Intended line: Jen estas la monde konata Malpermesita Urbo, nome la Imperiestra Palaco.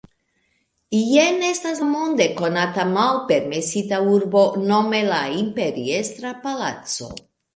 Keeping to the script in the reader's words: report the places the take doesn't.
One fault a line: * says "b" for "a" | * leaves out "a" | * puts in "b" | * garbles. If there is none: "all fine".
* leaves out "la"